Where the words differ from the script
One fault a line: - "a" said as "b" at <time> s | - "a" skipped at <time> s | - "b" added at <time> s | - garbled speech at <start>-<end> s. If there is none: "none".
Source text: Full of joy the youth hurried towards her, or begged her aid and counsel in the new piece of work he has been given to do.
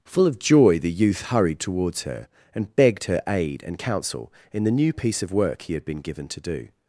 - "or" said as "and" at 2.5 s
- "has" said as "had" at 5.7 s